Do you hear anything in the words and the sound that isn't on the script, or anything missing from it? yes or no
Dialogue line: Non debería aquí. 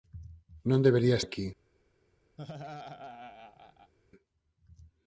yes